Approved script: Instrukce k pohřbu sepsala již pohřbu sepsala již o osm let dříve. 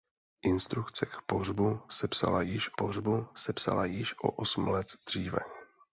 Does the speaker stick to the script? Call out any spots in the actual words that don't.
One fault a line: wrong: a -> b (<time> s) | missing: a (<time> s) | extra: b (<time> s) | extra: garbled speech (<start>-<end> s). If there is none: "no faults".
no faults